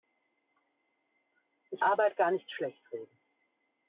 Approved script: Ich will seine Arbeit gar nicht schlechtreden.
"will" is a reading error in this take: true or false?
true